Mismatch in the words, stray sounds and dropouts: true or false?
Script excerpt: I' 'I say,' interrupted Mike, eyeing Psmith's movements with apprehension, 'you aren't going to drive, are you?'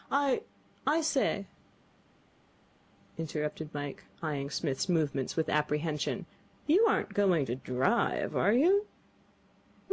false